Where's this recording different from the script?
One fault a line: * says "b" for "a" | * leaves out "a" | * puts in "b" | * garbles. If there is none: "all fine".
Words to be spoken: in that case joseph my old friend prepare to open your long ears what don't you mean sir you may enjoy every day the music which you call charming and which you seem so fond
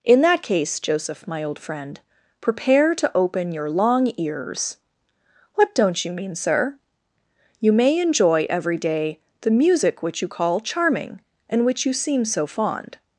all fine